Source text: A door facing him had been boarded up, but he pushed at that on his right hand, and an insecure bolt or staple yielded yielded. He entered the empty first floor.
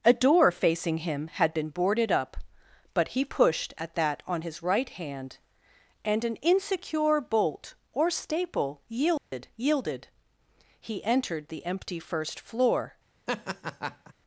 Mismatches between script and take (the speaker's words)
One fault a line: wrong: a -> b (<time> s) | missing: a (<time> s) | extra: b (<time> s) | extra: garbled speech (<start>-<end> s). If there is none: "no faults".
no faults